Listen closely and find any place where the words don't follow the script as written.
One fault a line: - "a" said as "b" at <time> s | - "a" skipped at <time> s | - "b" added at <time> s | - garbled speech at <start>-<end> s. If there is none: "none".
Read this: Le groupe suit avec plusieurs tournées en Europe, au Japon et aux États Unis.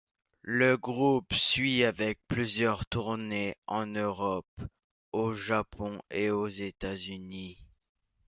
none